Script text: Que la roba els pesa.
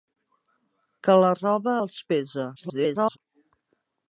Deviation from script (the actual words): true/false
true